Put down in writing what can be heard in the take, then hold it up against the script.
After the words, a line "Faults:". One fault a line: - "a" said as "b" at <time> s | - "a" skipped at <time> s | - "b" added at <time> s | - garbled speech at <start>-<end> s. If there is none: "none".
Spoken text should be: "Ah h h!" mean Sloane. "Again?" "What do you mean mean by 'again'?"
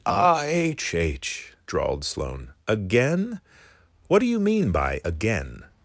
"Ah h h!" drawled Sloane. "Again?" "What do you mean by 'again'?"
Faults:
- "mean" said as "drawled" at 1.7 s
- "mean" skipped at 4.7 s